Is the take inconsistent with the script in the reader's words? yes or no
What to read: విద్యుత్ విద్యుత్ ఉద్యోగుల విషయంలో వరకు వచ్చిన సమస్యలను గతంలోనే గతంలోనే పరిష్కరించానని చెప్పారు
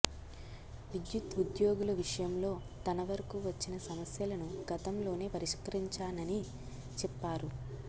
yes